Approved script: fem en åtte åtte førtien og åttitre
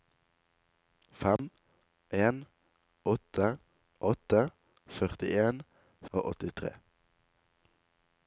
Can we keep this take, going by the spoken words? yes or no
yes